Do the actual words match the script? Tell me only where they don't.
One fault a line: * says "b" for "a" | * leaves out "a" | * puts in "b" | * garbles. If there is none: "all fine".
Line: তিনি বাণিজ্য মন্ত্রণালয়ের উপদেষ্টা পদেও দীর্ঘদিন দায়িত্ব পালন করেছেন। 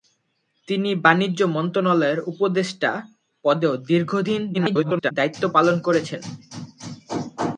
* garbles